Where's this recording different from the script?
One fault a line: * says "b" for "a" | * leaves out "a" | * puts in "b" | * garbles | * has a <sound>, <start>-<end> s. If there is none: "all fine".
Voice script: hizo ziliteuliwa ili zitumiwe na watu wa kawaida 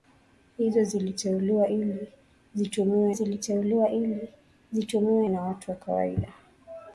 * puts in "ziliteuliwa ili zitumiwe"